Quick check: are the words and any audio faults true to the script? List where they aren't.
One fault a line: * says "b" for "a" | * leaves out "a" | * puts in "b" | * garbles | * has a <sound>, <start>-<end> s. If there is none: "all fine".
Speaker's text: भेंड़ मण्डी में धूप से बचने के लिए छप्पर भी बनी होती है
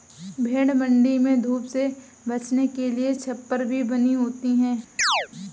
* has a chirp, 5.0-5.3 s